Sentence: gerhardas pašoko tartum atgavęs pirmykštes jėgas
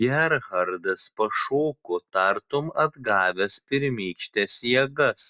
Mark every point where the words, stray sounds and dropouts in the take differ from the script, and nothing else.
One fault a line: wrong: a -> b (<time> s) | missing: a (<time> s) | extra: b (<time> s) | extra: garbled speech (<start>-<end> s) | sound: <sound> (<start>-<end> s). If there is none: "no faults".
no faults